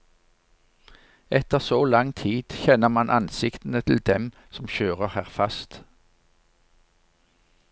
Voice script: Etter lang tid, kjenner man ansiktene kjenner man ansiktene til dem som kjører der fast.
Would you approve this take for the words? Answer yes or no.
no